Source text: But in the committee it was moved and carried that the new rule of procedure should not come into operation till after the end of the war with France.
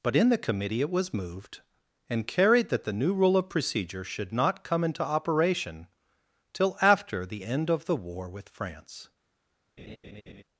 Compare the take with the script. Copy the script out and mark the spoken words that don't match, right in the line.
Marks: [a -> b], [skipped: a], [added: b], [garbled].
But in the committee it was moved and carried that the new rule of procedure should not come into operation till after the end of the war with France.